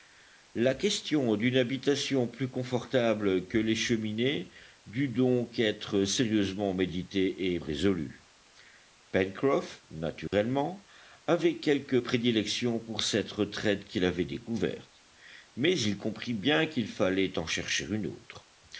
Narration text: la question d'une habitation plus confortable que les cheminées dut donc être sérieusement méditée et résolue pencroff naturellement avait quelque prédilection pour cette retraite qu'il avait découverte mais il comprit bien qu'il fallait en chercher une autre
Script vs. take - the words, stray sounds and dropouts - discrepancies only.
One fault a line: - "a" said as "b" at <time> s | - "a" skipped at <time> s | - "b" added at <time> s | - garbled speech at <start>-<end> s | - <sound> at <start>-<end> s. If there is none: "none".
- dropout at 10.3-10.3 s